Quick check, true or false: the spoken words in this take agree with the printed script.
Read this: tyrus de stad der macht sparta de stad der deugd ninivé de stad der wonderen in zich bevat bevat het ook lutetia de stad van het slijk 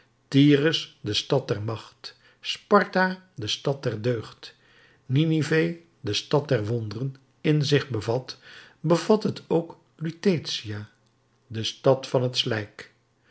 true